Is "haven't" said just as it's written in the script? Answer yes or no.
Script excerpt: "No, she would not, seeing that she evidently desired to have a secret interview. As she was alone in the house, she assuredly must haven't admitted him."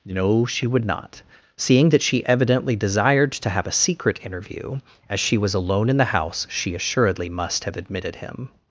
no